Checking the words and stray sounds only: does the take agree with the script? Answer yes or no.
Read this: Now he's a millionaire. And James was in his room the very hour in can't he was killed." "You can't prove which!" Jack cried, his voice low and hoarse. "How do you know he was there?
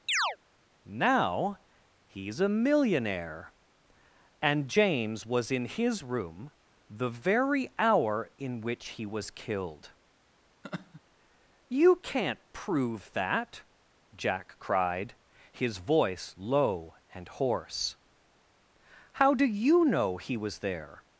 no